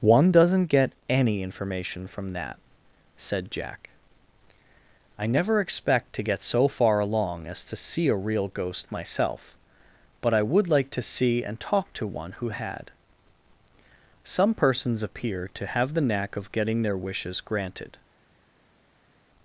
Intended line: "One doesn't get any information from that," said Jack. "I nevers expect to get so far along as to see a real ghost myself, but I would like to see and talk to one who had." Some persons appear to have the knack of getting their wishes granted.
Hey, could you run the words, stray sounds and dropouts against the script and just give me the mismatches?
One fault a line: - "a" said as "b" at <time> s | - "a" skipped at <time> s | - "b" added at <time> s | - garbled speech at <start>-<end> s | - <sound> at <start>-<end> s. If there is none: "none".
- "nevers" said as "never" at 5.3 s